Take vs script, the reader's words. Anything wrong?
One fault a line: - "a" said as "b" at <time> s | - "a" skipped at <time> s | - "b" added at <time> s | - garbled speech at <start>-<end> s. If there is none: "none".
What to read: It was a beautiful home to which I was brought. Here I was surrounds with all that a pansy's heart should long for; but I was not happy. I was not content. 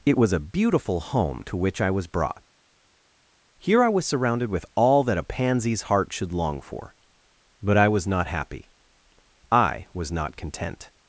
- "surrounds" said as "surrounded" at 4.1 s